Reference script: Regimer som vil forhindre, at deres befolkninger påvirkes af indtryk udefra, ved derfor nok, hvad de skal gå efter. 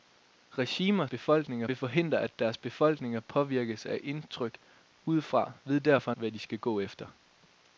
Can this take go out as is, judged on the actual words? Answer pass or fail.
fail